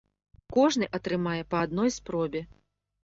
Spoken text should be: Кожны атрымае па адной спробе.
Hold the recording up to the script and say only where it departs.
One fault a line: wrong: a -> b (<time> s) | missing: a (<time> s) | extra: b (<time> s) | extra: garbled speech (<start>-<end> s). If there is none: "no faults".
no faults